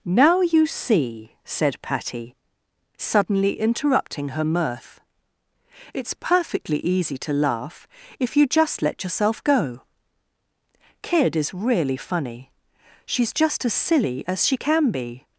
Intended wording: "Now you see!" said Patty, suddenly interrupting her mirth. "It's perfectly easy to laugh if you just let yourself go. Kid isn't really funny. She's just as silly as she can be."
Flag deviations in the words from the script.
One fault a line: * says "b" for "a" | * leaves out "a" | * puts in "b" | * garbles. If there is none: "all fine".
* says "is" for "isn't"